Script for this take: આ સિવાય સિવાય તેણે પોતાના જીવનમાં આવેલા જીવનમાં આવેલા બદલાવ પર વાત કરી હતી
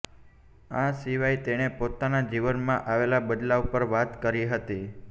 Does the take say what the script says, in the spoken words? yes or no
no